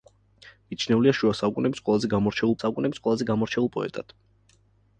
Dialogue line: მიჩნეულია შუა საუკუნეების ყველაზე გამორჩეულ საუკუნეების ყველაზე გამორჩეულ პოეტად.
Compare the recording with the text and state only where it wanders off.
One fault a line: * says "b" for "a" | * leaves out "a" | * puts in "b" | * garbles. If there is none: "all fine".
all fine